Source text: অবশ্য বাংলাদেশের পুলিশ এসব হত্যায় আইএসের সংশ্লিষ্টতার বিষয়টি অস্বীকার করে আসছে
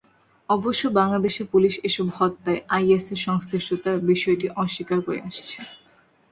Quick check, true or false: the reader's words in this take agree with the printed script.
true